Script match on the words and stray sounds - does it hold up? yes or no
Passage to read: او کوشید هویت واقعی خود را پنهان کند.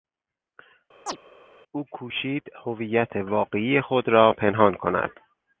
no